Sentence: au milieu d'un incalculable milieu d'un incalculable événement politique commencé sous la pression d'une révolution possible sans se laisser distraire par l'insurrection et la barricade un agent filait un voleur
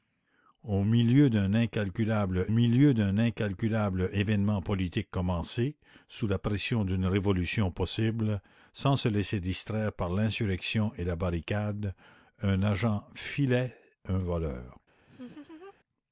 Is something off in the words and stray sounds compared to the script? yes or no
yes